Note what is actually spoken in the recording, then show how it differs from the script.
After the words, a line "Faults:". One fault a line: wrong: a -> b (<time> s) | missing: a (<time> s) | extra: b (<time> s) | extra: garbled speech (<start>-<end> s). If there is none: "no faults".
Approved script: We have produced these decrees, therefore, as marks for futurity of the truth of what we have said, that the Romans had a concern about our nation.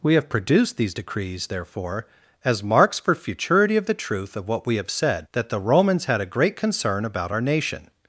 We have produced these decrees, therefore, as marks for futurity of the truth of what we have said, that the Romans had a great concern about our nation.
Faults:
extra: great (6.3 s)